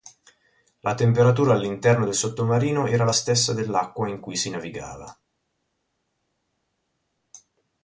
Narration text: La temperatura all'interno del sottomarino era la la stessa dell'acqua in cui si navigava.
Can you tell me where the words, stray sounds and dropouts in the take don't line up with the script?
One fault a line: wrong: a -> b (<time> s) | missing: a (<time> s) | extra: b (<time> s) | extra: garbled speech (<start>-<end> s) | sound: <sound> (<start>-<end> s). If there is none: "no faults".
missing: la (3.1 s)